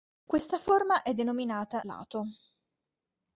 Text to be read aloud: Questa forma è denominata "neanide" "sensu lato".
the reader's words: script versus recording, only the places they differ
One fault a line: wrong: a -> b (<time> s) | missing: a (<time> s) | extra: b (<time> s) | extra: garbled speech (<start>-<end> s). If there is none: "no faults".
missing: neanide sensu (1.8 s)